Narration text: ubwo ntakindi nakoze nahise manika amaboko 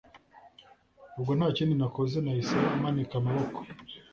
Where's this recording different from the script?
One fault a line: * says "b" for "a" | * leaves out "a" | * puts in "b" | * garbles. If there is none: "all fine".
all fine